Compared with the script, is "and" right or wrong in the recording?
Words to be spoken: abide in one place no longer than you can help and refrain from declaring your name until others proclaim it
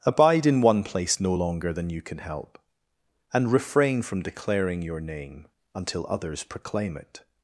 right